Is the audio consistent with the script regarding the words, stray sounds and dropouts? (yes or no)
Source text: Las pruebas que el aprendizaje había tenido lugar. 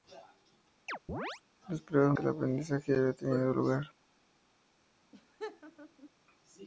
no